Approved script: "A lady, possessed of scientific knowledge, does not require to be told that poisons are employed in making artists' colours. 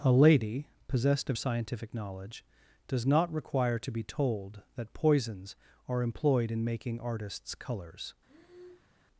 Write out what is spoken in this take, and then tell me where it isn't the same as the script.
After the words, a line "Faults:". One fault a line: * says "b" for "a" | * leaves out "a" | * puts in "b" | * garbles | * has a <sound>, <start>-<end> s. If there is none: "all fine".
"A lady, possessed of scientific knowledge, does not require to be told that poisons are employed in making artists' colours.
Faults:
* has a breath, 8.3-8.9 s